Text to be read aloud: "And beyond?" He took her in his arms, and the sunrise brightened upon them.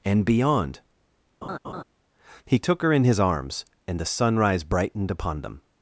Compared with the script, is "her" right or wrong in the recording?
right